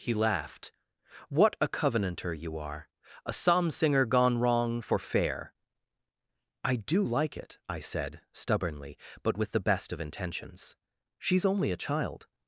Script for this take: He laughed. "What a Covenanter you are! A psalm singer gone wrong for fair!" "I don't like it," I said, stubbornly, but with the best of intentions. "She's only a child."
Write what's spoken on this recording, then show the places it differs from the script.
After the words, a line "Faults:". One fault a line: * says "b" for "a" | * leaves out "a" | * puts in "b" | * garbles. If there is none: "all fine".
He laughed. "What a Covenanter you are! A psalm singer gone wrong for fair!" "I do like it," I said, stubbornly, but with the best of intentions. "She's only a child."
Faults:
* says "do" for "don't"